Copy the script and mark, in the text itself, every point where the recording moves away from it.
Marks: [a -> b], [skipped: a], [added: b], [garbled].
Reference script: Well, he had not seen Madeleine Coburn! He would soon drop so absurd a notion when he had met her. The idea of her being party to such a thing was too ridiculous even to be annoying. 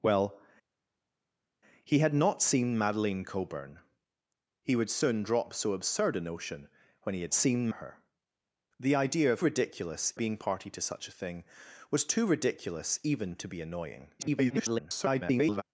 Well, he had not seen Madeleine Coburn! He would soon drop so absurd a notion when he had [met -> seen] her. The idea of [her -> ridiculous] being party to such a thing was too ridiculous even to be annoying. [garbled]